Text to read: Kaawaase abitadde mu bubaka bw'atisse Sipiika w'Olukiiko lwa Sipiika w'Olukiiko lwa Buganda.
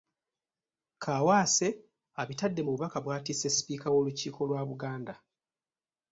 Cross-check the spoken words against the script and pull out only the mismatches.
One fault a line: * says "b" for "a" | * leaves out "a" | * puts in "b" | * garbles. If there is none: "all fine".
* leaves out "Sipiika w'Olukiiko lwa"